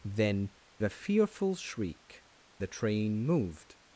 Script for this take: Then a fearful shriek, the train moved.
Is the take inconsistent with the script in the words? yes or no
no